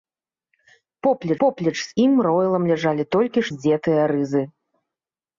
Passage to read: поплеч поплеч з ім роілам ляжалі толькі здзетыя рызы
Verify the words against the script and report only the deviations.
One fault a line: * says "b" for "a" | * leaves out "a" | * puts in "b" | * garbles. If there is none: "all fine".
all fine